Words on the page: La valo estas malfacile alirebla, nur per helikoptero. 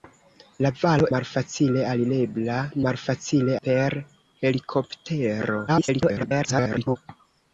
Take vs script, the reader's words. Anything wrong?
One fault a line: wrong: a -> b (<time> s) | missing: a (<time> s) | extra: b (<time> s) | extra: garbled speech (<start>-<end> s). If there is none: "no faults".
missing: estas (1.1 s)
wrong: nur -> malfacile (2.9 s)
extra: garbled speech (5.7-7.0 s)